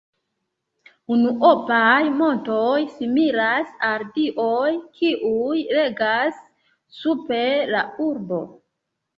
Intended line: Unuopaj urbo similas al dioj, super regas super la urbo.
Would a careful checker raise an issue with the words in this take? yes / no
yes